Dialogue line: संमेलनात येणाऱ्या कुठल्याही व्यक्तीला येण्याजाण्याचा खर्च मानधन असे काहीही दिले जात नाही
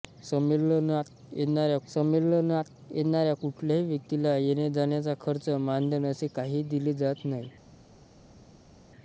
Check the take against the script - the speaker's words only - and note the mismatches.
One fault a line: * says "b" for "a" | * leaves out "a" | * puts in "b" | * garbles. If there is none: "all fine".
* puts in "संमेलनात येणाऱ्या"